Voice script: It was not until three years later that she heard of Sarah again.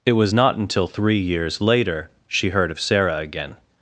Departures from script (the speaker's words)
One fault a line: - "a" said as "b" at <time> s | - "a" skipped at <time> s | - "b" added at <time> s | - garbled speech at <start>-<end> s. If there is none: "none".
- "that" skipped at 2.1 s